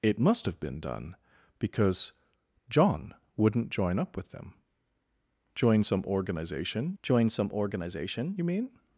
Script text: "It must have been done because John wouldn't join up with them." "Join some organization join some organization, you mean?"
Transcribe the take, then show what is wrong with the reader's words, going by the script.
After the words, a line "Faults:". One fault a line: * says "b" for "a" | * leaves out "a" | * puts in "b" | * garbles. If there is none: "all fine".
"It must have been done because John wouldn't join up with them." "Join some organization join some organization, you mean?"
Faults:
all fine